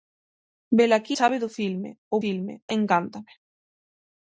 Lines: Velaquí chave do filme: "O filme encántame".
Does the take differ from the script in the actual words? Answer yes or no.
no